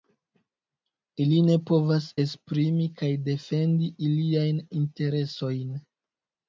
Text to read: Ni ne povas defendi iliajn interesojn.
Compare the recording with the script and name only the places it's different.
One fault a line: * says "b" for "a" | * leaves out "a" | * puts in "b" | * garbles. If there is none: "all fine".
* says "Ili" for "Ni"
* puts in "esprimi kaj"